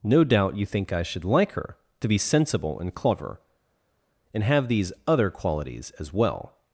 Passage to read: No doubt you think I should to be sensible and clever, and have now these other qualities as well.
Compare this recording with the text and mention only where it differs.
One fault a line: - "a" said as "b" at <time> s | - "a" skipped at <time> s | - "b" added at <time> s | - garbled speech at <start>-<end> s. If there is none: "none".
- "like her" added at 1.2 s
- "now" skipped at 4.7 s